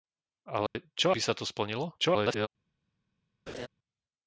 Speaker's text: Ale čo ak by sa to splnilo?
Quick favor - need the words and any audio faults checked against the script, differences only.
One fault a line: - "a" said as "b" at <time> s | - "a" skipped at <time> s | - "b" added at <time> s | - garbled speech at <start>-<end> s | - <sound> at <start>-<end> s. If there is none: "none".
- dropout at 0.7-0.7 s
- "ak" skipped at 1.1 s
- garbled speech at 2.0-2.5 s
- laugh at 3.5-3.7 s